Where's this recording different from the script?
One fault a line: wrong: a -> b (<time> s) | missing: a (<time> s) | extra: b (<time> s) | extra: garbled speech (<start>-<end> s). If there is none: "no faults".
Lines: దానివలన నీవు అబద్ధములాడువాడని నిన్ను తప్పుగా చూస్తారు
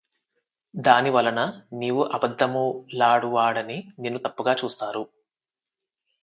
no faults